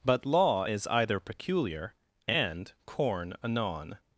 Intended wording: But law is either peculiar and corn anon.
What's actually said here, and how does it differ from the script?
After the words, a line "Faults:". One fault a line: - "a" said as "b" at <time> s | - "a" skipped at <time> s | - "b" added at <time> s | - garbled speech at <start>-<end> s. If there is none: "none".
But law is either peculiar and corn anon.
Faults:
none